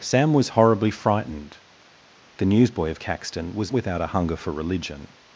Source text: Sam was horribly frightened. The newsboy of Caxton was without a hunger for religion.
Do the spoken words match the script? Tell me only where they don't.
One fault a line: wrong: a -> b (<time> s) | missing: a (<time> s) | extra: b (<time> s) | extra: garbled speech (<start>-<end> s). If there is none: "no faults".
no faults